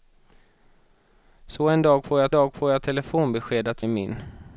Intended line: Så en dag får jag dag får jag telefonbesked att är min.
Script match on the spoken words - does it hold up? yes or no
yes